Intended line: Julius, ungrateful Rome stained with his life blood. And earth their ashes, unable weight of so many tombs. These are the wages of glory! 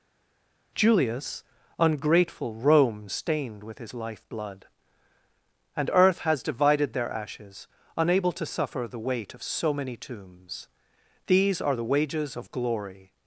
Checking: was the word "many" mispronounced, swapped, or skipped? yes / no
no